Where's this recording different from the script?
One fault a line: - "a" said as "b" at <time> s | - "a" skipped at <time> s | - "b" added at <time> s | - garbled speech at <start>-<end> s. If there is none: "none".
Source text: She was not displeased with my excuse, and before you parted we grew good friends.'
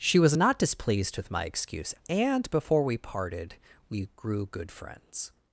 - "you" said as "we" at 2.8 s